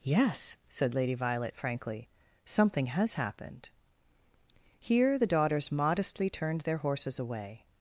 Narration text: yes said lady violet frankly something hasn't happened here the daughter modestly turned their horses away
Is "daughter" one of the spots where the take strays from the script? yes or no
yes